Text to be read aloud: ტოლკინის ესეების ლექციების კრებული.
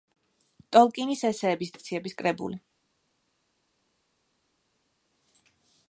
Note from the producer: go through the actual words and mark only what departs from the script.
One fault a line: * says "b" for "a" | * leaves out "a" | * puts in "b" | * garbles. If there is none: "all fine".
all fine